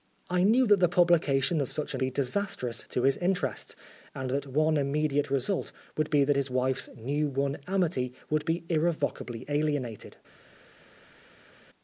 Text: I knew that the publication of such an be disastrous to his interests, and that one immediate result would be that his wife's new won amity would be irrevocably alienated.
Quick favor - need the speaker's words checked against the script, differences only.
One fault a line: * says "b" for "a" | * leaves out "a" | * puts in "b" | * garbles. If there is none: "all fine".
all fine